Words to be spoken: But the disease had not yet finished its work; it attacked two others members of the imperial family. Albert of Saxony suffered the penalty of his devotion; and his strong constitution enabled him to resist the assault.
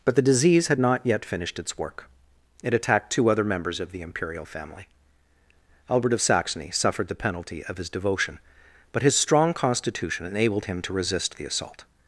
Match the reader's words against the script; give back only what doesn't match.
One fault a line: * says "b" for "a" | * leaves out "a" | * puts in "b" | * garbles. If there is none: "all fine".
* says "other" for "others"
* says "but" for "and"